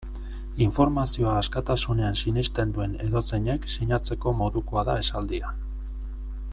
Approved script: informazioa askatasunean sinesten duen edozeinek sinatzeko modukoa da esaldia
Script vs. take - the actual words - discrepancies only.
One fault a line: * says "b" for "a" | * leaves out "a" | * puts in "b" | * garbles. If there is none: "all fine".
all fine